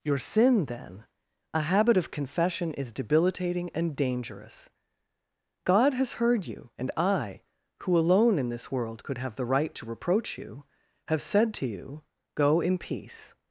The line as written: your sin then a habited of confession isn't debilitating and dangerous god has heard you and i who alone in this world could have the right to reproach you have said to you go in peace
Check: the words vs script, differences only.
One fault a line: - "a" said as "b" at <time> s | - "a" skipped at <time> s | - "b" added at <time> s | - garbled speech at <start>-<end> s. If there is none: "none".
- "habited" said as "habit" at 1.6 s
- "isn't" said as "is" at 2.7 s